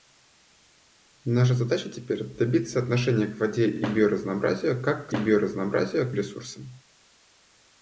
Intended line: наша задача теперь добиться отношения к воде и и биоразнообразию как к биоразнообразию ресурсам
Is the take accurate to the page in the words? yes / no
yes